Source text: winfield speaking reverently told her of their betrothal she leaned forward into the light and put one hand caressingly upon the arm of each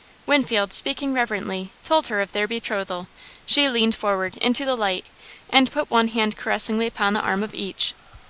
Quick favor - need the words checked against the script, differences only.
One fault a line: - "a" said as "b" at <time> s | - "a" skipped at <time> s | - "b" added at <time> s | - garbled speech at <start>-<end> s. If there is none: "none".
none